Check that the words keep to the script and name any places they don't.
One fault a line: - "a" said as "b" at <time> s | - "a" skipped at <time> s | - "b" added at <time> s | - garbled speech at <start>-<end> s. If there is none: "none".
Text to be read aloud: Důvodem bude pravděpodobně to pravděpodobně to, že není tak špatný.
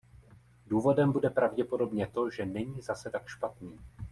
- "pravděpodobně to" skipped at 2.3 s
- "zase" added at 2.8 s